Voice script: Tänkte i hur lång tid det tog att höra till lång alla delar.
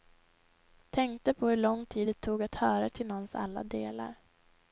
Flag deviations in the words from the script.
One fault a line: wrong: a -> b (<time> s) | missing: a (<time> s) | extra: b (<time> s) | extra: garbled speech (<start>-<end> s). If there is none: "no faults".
wrong: i -> på (1.3 s)
wrong: lång -> någons (3.1 s)